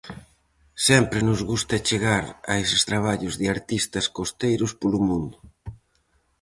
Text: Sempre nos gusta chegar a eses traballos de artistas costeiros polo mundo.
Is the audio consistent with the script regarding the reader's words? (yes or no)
yes